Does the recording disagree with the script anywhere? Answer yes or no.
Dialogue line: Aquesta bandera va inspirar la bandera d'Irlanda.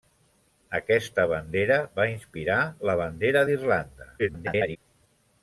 yes